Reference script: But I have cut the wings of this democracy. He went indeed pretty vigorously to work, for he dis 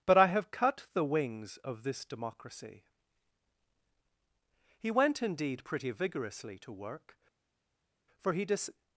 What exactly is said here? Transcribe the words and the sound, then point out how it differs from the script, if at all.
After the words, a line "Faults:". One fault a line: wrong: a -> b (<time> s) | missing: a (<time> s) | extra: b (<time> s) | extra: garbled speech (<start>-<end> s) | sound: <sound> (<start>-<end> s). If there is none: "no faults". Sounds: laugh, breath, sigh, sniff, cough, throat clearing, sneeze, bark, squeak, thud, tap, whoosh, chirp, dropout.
But I have cut the wings of this democracy. He went indeed pretty vigorously to work, for he dis
Faults:
no faults